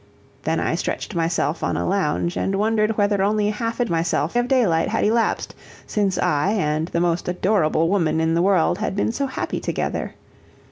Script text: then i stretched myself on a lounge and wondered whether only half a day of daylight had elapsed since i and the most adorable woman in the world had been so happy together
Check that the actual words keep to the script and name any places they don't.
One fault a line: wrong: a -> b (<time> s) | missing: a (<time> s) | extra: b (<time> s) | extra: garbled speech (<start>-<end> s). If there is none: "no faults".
wrong: day -> myself (3.9 s)